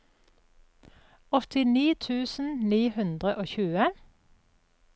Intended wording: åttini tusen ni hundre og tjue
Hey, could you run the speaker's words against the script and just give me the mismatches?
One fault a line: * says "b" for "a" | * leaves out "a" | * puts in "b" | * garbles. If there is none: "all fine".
all fine